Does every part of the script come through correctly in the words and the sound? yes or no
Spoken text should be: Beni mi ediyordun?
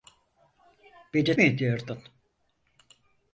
yes